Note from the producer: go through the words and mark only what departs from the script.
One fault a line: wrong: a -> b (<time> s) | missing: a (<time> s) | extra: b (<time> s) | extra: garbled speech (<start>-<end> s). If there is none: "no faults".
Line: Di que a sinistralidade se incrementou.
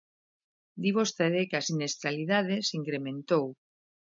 extra: vostede (1.0 s)